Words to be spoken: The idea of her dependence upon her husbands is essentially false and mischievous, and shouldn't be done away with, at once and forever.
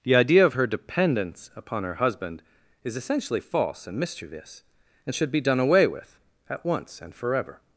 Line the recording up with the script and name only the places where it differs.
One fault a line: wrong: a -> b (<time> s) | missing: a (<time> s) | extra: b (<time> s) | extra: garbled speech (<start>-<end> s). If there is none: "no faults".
wrong: husbands -> husband (1.9 s)
wrong: shouldn't -> should (5.1 s)